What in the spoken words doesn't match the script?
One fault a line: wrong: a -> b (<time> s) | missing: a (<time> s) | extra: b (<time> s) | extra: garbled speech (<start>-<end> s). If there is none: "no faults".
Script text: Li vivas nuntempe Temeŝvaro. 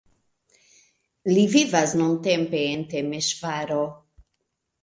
extra: en (2.8 s)